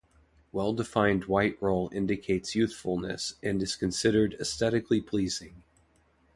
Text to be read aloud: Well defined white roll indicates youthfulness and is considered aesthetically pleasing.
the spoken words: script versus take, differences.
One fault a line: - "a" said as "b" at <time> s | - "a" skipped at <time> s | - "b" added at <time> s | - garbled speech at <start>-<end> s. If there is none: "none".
none